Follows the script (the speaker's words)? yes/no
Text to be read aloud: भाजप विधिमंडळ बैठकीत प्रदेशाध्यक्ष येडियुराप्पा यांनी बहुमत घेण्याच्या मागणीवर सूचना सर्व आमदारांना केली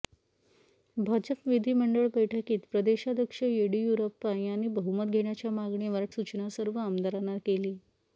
yes